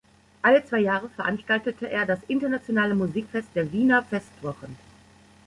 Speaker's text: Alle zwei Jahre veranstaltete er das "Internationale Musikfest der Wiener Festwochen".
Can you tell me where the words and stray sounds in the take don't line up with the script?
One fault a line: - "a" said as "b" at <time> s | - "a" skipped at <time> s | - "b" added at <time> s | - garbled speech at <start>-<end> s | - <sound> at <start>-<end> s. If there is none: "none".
none